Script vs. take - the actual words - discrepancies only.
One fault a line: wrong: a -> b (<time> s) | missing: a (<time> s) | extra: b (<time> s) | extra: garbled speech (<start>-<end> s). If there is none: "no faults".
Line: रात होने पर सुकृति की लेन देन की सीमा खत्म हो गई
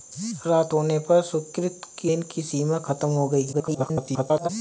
missing: लेन (2.1 s)
extra: garbled speech (3.5-4.5 s)